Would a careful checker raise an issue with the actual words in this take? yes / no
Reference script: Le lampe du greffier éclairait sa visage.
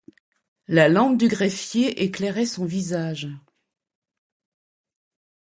yes